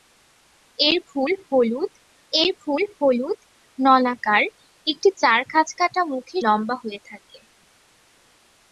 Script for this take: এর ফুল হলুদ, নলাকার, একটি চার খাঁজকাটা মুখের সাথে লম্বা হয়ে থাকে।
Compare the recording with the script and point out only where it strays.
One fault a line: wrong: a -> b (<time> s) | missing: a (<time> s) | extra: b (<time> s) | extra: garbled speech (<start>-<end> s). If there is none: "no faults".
extra: এর ফুল হলুদ (2.3 s)
missing: সাথে (6.4 s)